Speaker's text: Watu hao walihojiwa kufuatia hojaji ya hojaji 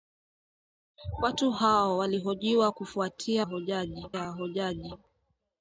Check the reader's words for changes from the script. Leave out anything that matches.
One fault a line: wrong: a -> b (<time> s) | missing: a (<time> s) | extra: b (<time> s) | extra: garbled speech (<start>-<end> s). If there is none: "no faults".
no faults